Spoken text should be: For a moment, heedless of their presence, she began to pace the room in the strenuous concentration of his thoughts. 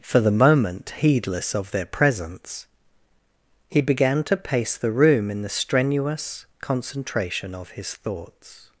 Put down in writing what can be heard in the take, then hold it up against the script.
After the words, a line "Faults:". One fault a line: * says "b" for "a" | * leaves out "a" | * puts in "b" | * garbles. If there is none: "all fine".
For the moment, heedless of their presence, he began to pace the room in the strenuous concentration of his thoughts.
Faults:
* says "the" for "a"
* says "he" for "she"